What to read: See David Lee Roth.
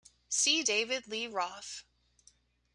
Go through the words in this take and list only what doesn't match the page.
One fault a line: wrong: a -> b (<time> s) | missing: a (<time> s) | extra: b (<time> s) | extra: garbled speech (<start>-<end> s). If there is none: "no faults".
no faults